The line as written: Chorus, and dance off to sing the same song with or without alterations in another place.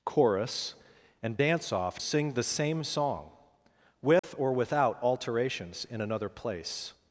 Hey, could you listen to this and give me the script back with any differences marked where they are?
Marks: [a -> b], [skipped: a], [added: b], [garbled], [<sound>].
Chorus, and dance off [skipped: to] sing the same song with [dropout] or without alterations in another place.